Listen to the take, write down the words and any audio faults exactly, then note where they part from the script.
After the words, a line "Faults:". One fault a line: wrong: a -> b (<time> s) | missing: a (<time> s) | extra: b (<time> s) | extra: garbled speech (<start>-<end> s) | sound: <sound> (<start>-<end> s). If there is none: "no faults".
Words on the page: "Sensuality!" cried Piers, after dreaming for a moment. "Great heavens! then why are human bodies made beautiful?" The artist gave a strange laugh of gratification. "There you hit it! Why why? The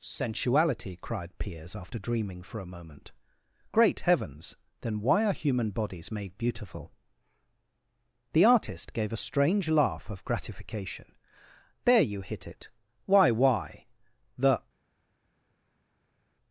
"Sensuality!" cried Piers, after dreaming for a moment. "Great heavens! then why are human bodies made beautiful?" The artist gave a strange laugh of gratification. "There you hit it! Why why? The
Faults:
no faults